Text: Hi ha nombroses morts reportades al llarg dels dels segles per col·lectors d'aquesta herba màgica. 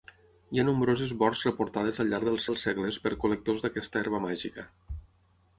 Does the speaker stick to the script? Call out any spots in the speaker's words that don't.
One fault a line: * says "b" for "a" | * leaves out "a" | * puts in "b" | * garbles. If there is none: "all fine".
all fine